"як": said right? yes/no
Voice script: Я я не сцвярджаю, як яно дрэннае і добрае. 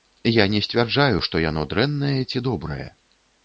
no